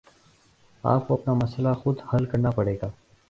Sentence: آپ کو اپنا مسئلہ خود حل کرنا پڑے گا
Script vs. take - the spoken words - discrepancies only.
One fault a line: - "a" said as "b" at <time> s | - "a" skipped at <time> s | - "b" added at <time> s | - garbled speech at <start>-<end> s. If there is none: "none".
none